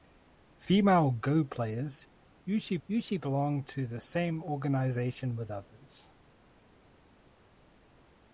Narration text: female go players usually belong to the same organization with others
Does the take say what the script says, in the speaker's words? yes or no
no